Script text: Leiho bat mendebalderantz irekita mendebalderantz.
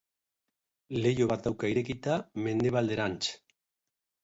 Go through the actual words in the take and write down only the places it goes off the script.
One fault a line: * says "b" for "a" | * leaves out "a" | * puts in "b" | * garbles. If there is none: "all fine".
* says "dauka" for "mendebalderantz"